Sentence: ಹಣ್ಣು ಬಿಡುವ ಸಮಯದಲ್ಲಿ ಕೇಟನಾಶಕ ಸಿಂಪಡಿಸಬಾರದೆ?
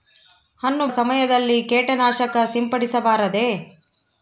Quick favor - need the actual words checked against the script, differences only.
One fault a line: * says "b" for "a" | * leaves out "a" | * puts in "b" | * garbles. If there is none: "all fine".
* leaves out "ಬಿಡುವ"